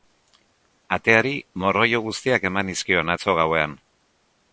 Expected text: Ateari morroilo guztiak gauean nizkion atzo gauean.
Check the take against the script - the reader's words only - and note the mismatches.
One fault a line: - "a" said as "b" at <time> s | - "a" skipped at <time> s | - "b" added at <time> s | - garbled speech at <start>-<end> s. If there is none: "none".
- "gauean" said as "eman" at 2.5 s